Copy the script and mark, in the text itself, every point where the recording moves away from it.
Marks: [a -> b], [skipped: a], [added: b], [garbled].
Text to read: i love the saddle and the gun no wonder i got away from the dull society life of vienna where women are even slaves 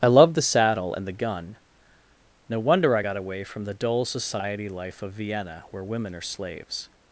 i love the saddle and the gun no wonder i got away from the dull society life of vienna where women are [skipped: even] slaves